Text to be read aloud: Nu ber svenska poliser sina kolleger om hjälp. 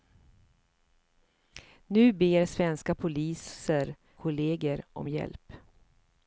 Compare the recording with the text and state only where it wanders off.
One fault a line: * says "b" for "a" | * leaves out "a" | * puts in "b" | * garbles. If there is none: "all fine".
* leaves out "sina"